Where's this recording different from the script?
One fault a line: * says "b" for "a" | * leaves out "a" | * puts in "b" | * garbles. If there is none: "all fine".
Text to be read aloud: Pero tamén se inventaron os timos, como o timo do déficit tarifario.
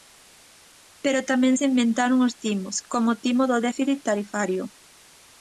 all fine